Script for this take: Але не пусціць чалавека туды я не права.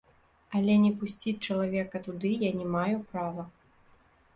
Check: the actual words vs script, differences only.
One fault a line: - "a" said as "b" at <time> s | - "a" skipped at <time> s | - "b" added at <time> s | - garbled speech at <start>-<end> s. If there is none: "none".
- "маю" added at 2.8 s